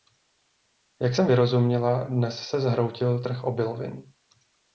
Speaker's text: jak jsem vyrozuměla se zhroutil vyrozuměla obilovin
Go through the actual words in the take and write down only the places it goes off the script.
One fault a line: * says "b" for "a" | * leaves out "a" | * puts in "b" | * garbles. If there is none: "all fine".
* puts in "dnes"
* says "trh" for "vyrozuměla"